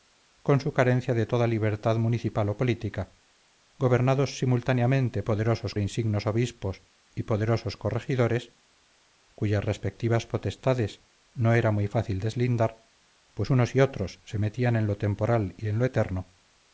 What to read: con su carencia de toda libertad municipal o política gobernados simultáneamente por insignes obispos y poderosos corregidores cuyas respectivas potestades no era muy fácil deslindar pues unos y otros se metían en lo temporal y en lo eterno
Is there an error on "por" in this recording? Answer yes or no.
yes